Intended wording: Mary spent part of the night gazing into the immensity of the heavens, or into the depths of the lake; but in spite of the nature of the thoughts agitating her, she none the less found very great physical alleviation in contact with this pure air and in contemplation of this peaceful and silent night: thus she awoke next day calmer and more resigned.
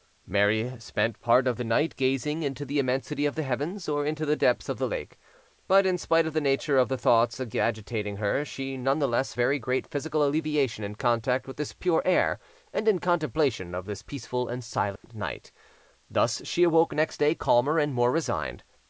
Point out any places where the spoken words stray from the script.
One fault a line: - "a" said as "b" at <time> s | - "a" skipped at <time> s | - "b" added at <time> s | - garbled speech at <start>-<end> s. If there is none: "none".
- "found" skipped at 9.3 s